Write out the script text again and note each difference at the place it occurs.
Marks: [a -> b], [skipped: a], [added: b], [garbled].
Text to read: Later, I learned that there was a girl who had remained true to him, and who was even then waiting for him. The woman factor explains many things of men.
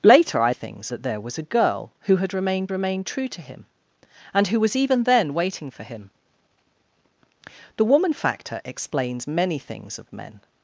Later, I [learned -> things] that there was a girl who had remained [added: remained] true to him, and who was even then waiting for him. The woman factor explains many things of men.